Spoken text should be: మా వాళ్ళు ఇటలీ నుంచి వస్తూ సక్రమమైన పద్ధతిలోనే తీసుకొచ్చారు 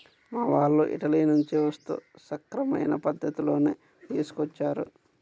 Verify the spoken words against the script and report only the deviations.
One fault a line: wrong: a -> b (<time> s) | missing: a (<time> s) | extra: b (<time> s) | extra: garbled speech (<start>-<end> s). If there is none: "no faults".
no faults